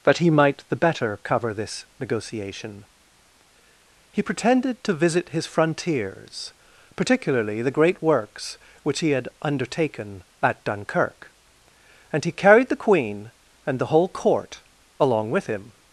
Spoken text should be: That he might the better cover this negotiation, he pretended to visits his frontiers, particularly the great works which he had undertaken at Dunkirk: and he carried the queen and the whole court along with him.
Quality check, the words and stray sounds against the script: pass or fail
fail